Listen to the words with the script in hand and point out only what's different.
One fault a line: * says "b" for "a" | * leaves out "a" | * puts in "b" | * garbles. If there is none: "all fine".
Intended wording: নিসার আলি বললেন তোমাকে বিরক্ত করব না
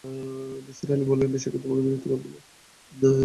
* puts in "বেশিক্ষণ"